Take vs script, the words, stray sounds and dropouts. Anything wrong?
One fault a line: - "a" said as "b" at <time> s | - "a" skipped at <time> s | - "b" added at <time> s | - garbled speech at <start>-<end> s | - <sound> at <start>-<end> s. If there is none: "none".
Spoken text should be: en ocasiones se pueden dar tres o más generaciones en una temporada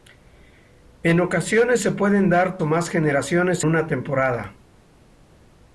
- "tres" skipped at 2.6 s
- "en" skipped at 3.7 s